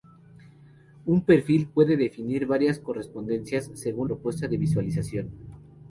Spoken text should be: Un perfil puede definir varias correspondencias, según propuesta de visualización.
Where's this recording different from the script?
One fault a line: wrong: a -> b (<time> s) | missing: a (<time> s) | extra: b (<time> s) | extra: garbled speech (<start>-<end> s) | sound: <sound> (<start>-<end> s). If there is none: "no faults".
no faults